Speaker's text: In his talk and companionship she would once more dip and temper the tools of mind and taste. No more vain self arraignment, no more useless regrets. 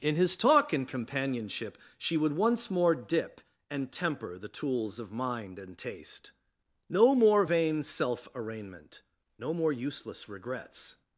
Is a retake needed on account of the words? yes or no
no